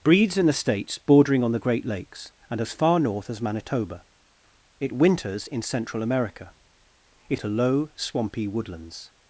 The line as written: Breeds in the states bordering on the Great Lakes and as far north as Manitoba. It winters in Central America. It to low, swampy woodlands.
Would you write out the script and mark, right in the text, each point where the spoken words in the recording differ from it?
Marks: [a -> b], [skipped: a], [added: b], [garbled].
Breeds in the states bordering on the Great Lakes and as far north as Manitoba. It winters in Central America. It to low, swampy woodlands.